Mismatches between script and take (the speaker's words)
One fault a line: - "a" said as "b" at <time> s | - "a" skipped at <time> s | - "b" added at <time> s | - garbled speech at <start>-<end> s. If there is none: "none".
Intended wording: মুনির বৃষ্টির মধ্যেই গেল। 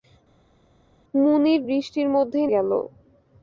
none